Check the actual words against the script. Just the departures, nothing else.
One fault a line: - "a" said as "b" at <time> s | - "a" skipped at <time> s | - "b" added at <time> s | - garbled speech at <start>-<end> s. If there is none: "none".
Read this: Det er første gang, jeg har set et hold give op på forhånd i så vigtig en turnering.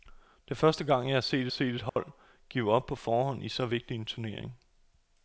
- "set" added at 1.5 s